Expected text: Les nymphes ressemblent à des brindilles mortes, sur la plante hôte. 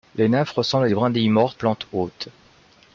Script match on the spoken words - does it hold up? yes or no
no